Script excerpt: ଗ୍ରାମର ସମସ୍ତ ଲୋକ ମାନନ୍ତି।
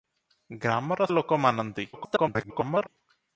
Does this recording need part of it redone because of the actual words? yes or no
yes